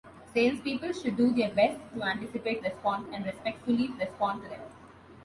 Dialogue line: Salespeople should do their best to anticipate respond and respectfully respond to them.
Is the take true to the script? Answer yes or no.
yes